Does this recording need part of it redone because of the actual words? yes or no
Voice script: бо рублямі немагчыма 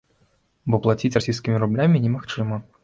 yes